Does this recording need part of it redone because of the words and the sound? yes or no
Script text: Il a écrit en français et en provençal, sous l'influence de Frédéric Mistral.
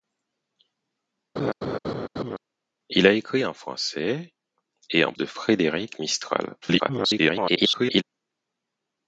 yes